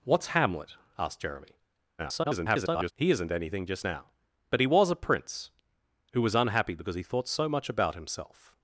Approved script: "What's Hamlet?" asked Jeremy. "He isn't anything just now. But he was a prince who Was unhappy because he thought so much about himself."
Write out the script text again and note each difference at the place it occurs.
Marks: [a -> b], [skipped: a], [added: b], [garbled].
"What's Hamlet?" asked Jeremy. [garbled] "He isn't anything just now. But he was a prince who Was unhappy because he thought so much about himself."